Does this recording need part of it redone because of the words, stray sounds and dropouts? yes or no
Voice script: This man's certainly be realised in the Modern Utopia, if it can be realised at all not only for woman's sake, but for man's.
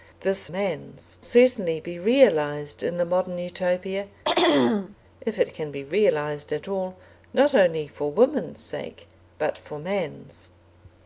yes